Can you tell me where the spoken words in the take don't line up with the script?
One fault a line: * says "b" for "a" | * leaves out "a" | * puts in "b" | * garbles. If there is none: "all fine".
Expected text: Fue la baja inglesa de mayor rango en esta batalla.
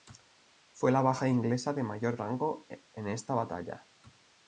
all fine